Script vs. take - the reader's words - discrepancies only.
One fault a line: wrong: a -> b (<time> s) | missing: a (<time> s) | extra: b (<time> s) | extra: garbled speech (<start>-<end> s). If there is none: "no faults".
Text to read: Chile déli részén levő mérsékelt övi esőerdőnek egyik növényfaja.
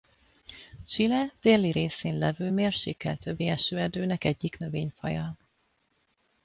no faults